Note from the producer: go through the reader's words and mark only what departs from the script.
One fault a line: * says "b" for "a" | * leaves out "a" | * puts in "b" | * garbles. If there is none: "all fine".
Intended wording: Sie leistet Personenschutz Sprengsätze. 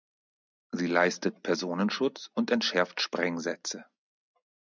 * puts in "und entschärft"